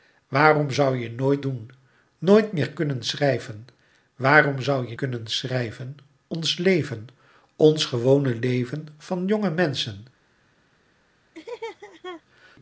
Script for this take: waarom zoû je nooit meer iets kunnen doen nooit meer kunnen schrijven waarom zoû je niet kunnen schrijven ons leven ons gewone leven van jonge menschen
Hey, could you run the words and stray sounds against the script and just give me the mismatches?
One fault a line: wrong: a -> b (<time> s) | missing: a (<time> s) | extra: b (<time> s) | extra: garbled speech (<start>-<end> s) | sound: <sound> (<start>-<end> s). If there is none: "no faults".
missing: meer iets kunnen (1.4 s)
missing: niet (5.0 s)
sound: laugh (11.3-12.2 s)